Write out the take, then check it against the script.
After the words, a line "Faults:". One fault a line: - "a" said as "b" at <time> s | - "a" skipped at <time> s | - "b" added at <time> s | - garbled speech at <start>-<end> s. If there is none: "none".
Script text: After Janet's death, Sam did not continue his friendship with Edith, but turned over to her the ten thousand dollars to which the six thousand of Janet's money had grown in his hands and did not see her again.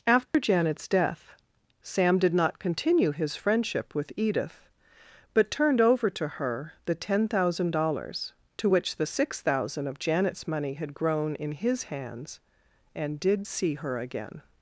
After Janet's death, Sam did not continue his friendship with Edith, but turned over to her the ten thousand dollars to which the six thousand of Janet's money had grown in his hands and did see her again.
Faults:
- "not" skipped at 13.5 s